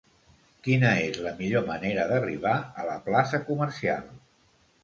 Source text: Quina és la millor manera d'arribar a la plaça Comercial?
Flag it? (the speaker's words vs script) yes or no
no